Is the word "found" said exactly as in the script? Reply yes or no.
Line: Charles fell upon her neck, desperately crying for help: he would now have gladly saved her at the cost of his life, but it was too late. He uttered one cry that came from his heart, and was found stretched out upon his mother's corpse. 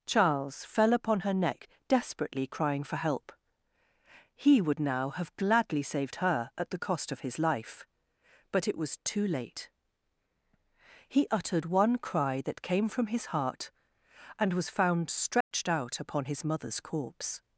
yes